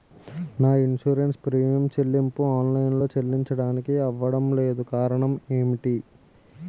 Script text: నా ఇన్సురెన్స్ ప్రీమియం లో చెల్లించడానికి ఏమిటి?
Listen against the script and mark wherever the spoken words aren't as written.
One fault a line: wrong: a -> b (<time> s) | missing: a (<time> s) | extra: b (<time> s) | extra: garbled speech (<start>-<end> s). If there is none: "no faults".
extra: చెల్లింపు ఆన్ లైన్ (1.9 s)
extra: అవ్వడం లేదు కారణం (4.0 s)